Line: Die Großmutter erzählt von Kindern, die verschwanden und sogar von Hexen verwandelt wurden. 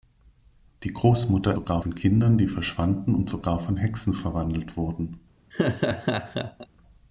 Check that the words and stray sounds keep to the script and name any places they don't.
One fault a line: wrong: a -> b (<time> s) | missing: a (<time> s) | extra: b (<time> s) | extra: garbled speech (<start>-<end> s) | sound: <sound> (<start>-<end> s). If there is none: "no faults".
wrong: erzählt -> sogar (1.5 s)
sound: laugh (5.5-6.7 s)